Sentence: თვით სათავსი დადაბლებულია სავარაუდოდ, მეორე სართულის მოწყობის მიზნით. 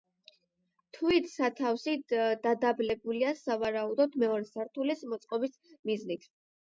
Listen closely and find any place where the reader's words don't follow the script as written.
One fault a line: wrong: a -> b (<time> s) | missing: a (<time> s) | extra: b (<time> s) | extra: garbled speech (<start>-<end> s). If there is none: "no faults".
no faults